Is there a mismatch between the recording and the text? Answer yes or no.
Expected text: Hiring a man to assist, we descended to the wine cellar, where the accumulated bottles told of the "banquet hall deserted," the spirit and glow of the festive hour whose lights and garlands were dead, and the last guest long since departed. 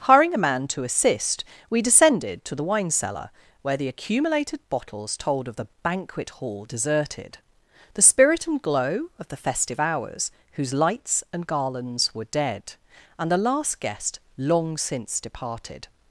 yes